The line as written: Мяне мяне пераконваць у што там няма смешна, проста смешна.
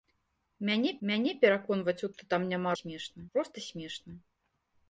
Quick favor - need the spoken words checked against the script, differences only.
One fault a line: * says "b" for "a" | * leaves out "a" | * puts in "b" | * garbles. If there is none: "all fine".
all fine